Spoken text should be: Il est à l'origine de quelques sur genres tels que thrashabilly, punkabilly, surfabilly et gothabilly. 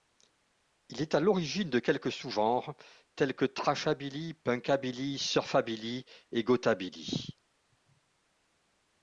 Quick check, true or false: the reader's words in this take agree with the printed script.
false